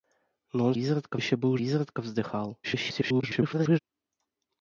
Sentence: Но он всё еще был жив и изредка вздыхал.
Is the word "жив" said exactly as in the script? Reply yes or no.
no